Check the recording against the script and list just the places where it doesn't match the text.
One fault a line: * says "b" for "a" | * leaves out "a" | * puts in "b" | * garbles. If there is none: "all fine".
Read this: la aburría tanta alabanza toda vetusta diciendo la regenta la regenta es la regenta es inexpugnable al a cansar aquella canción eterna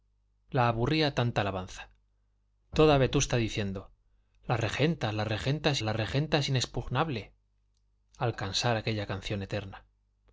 all fine